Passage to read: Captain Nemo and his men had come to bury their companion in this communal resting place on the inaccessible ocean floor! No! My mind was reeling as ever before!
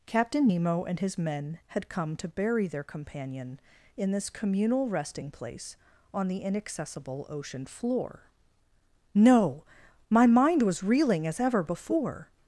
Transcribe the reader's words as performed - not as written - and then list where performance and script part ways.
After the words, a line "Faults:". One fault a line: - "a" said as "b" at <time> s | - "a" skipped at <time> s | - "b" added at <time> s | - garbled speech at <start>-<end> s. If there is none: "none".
Captain Nemo and his men had come to bury their companion in this communal resting place on the inaccessible ocean floor! No! My mind was reeling as ever before!
Faults:
none